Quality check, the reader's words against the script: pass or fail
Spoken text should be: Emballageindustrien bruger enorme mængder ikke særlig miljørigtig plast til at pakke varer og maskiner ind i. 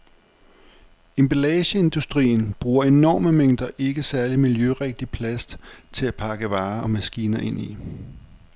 pass